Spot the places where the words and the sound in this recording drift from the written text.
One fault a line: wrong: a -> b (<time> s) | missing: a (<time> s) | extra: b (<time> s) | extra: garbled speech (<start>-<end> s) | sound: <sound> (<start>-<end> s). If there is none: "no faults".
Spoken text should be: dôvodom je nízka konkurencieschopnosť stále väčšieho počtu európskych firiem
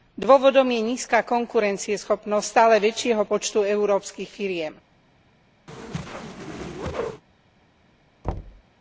sound: whoosh (5.7-7.2 s)
sound: thud (8.2-8.6 s)